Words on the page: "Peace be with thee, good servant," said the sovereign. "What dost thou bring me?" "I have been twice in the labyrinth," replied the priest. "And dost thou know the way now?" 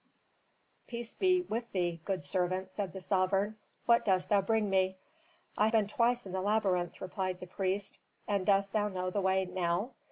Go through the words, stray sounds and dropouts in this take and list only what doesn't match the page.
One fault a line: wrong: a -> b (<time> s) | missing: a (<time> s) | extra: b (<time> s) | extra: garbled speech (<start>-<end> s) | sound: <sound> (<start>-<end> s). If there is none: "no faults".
missing: have (5.7 s)